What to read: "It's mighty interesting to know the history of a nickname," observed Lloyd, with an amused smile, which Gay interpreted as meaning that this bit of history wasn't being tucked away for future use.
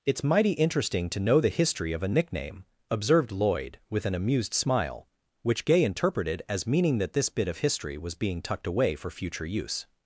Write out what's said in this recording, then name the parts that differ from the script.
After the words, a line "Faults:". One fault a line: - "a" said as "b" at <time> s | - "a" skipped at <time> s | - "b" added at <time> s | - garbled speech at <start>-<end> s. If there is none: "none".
"It's mighty interesting to know the history of a nickname," observed Lloyd, with an amused smile, which Gay interpreted as meaning that this bit of history was being tucked away for future use.
Faults:
- "wasn't" said as "was" at 8.0 s